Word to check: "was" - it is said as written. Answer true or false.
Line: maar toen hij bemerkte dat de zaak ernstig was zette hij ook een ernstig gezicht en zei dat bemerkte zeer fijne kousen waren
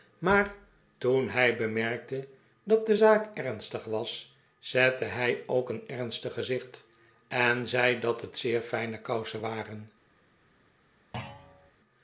true